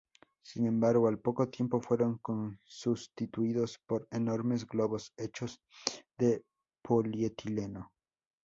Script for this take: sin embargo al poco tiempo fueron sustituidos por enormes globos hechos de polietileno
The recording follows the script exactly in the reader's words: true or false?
true